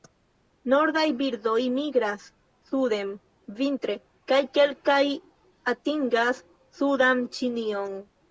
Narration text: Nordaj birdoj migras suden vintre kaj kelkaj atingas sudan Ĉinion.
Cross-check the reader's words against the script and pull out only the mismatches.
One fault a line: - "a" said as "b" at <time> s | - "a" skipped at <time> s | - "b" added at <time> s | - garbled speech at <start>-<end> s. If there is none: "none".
none